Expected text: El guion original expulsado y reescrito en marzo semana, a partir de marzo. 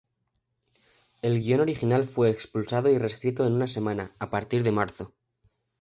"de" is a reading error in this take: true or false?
false